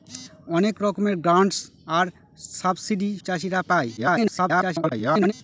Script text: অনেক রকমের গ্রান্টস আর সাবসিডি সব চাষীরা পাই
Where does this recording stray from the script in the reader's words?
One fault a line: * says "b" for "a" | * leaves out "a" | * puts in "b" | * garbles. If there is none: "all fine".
* leaves out "সব"
* garbles